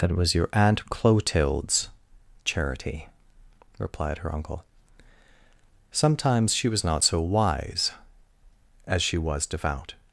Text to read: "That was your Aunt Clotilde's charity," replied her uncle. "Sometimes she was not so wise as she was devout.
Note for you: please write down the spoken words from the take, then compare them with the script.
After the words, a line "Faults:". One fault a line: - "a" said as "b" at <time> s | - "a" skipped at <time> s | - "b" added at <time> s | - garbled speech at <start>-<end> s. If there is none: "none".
"That was your Aunt Clotilde's charity," replied her uncle. "Sometimes she was not so wise as she was devout.
Faults:
none